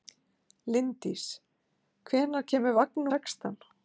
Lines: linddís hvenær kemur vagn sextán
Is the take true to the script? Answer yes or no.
yes